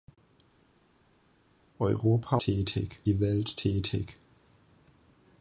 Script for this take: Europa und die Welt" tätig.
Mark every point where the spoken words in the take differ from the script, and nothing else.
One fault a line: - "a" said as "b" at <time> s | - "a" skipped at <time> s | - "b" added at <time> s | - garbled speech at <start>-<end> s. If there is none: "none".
- "und" said as "tätig" at 2.4 s